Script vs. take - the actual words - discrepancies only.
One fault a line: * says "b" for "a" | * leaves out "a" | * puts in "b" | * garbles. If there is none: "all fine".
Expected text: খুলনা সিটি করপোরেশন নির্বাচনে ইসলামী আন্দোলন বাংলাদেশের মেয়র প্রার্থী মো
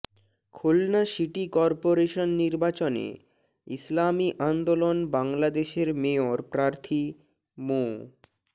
all fine